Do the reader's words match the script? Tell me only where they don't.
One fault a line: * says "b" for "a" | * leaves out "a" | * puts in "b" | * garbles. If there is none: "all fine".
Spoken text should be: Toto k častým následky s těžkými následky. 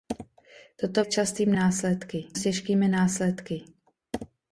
all fine